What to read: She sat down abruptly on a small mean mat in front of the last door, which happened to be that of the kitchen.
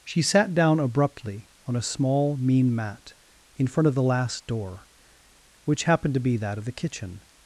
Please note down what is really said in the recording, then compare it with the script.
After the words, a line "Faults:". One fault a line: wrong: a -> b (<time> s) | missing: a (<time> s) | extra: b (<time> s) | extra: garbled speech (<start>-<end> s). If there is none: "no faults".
She sat down abruptly on a small mean mat in front of the last door, which happened to be that of the kitchen.
Faults:
no faults